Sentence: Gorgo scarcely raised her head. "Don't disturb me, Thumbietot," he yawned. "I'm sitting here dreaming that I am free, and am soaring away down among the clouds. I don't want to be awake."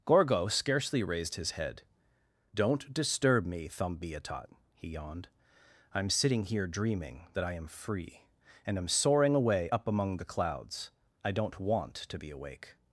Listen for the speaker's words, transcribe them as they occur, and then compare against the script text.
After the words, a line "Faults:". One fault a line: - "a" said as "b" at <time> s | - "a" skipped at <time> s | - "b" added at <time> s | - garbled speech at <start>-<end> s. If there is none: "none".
Gorgo scarcely raised his head. "Don't disturb me, Thumbietot," he yawned. "I'm sitting here dreaming that I am free, and am soaring away up among the clouds. I don't want to be awake."
Faults:
- "her" said as "his" at 1.4 s
- "down" said as "up" at 9.7 s